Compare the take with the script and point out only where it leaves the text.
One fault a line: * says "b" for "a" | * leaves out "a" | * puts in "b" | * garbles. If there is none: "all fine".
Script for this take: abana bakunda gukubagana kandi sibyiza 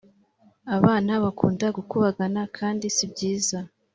all fine